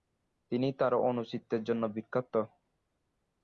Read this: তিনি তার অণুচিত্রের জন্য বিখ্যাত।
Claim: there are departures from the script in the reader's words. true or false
false